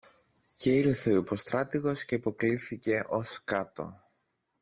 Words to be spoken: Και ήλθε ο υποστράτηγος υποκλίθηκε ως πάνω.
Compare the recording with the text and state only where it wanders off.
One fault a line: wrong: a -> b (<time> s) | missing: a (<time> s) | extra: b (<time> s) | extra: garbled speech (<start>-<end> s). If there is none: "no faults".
extra: και (2.0 s)
wrong: πάνω -> κάτω (3.4 s)